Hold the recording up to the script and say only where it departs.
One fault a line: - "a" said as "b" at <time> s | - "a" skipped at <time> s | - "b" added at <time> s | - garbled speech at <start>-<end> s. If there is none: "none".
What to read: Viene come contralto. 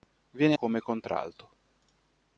none